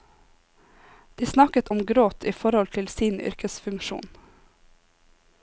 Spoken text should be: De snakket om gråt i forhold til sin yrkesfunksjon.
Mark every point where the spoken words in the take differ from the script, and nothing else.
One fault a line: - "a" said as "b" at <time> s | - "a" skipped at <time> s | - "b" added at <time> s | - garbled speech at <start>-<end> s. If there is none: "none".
none